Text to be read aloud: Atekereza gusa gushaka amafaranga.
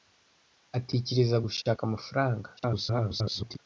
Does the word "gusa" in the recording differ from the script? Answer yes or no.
yes